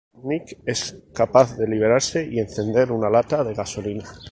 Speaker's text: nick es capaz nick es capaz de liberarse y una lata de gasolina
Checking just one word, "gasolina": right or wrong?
right